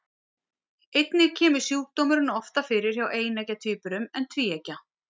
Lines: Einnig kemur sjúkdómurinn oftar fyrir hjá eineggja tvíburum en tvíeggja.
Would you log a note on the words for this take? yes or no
no